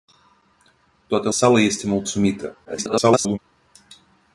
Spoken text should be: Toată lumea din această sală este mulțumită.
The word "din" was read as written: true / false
false